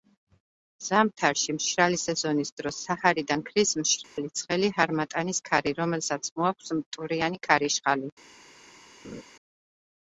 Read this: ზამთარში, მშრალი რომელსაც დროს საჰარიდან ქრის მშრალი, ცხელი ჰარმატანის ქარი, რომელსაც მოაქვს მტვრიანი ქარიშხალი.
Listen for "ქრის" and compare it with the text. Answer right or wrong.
right